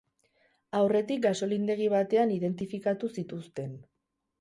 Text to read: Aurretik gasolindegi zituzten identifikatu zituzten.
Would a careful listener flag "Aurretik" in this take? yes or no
no